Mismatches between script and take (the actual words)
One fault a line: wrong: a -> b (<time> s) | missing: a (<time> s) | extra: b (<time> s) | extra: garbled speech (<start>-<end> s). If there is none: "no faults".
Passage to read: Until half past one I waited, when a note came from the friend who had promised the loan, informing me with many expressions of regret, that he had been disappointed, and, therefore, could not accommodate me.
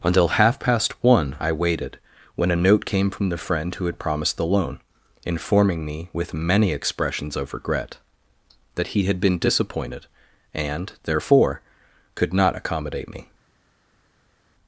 no faults